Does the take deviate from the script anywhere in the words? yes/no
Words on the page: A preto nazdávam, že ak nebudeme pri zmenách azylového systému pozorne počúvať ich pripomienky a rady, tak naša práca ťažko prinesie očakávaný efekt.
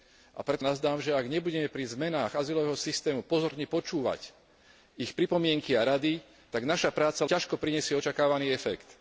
no